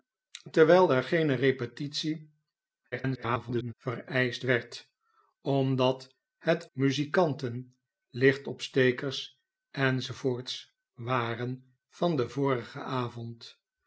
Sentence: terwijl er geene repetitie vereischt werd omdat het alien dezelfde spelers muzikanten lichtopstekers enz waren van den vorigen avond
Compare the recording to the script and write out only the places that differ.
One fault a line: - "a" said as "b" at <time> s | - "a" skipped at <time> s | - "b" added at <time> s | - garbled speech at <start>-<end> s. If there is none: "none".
- garbled speech at 2.9-3.7 s
- "alien dezelfde spelers" skipped at 6.7 s